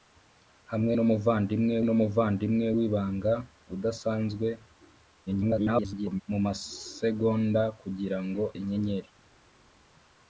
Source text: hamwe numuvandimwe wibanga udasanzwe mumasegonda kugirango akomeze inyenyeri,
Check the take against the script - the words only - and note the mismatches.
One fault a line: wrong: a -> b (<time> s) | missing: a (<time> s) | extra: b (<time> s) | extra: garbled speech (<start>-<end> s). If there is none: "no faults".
extra: numuvandimwe (1.8 s)
extra: garbled speech (5.3-6.2 s)
missing: akomeze (8.4 s)